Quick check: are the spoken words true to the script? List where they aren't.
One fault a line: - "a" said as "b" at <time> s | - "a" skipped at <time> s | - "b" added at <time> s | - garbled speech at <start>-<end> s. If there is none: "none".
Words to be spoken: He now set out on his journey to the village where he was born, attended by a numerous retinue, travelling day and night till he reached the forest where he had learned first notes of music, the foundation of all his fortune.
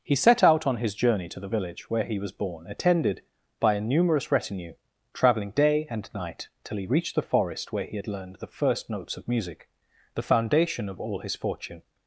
- "now" skipped at 0.1 s
- "the" added at 8.4 s